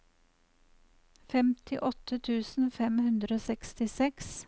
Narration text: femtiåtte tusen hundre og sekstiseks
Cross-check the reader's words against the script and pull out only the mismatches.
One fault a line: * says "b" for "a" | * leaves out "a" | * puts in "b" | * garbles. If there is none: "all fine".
* puts in "fem"